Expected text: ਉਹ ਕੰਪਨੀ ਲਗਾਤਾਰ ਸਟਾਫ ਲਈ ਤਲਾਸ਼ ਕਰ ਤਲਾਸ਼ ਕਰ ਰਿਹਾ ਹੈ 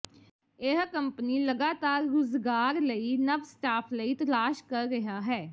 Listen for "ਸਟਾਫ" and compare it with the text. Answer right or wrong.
wrong